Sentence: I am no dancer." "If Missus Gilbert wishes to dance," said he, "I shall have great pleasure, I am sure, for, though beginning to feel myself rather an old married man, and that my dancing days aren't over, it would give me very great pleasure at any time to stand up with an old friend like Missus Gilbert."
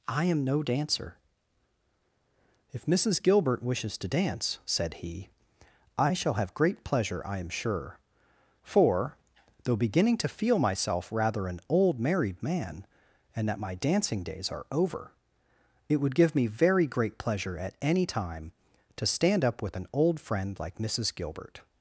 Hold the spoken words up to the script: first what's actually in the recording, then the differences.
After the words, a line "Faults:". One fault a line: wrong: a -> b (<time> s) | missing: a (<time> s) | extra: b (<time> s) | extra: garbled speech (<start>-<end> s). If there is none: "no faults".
I am no dancer." "If Missus Gilbert wishes to dance," said he, "I shall have great pleasure, I am sure, for, though beginning to feel myself rather an old married man, and that my dancing days are over, it would give me very great pleasure at any time to stand up with an old friend like Missus Gilbert."
Faults:
wrong: aren't -> are (14.5 s)